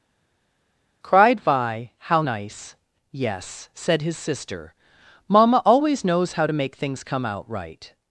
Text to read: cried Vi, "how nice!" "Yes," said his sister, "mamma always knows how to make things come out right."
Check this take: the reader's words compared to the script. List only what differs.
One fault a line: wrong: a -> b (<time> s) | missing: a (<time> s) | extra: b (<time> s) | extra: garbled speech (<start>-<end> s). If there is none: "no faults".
no faults